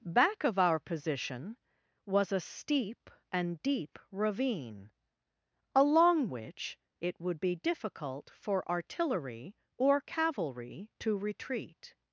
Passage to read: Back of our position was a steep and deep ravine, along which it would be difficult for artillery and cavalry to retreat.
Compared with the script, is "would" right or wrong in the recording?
right